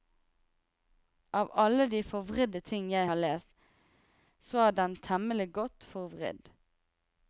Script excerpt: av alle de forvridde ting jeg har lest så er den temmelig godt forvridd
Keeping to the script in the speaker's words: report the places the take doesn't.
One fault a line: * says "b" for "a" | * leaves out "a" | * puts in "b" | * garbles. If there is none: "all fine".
all fine